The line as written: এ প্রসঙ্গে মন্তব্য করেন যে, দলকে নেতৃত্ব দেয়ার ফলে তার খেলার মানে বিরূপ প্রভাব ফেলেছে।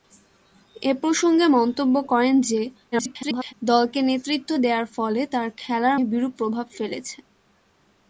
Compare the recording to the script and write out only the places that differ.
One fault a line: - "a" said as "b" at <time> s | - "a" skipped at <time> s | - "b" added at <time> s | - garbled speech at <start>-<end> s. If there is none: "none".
- garbled speech at 2.9-3.5 s
- "মানে" skipped at 6.0 s